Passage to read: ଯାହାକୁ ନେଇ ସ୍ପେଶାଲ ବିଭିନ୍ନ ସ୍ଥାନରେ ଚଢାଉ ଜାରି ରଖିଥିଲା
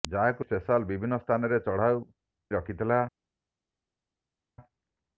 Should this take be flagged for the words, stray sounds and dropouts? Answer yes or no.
yes